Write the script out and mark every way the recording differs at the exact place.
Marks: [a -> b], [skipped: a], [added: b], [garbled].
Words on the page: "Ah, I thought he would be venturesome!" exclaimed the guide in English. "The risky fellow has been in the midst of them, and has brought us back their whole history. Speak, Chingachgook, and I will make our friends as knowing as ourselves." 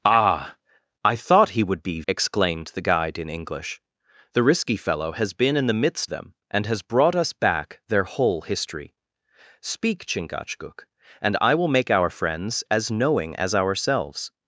"Ah, I thought he would be [skipped: venturesome!"] exclaimed the guide in English. "The risky fellow has been in the midst [skipped: of] them, and has brought us back their whole history. Speak, Chingachgook, and I will make our friends as knowing as ourselves."